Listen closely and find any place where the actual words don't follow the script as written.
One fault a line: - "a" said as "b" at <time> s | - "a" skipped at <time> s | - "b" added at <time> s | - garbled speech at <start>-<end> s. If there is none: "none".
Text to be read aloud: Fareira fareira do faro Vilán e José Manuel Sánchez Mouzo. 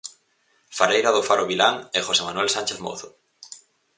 - "fareira" skipped at 1.1 s